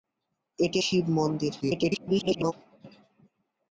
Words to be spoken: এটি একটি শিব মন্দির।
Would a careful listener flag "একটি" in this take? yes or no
yes